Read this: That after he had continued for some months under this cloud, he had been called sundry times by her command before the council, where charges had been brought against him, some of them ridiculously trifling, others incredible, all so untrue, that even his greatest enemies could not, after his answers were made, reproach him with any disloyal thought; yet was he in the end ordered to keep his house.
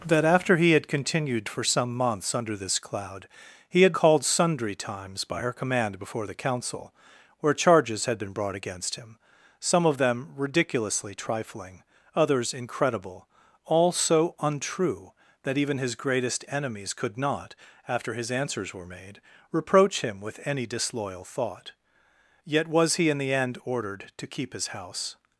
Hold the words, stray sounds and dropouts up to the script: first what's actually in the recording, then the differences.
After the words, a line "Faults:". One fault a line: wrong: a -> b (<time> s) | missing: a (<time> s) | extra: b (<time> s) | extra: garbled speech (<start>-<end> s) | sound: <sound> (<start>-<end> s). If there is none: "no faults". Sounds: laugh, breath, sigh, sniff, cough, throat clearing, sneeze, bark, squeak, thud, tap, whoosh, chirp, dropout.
That after he had continued for some months under this cloud, he had called sundry times by her command before the council, where charges had been brought against him, some of them ridiculously trifling, others incredible, all so untrue, that even his greatest enemies could not, after his answers were made, reproach him with any disloyal thought; yet was he in the end ordered to keep his house.
Faults:
missing: been (3.9 s)